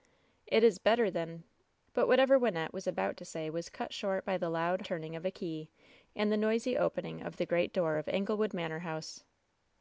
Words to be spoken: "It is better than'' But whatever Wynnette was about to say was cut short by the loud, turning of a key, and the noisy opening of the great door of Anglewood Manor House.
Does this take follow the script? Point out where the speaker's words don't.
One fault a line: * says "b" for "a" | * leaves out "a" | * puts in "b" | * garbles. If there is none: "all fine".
all fine